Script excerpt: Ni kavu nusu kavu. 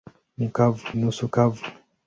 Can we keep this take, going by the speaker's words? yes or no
yes